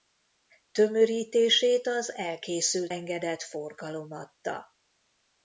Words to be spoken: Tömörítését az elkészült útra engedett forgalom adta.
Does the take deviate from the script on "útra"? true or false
true